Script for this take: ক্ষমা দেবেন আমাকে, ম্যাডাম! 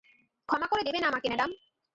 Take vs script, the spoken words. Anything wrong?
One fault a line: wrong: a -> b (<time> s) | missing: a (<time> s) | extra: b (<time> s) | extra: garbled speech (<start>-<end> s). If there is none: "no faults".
extra: করে (0.7 s)